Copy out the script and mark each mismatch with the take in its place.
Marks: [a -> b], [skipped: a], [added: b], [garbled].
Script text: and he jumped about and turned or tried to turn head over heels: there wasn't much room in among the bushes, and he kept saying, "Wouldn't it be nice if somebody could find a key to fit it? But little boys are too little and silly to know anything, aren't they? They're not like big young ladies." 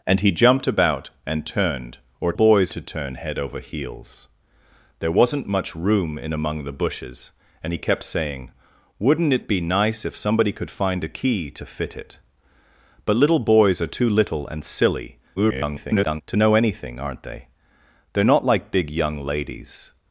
and he jumped about and turned or [tried -> boys] to turn head over heels: there wasn't much room in among the bushes, and he kept saying, "Wouldn't it be nice if somebody could find a key to fit it? But little boys are too little and silly [garbled] to know anything, aren't they? They're not like big young ladies."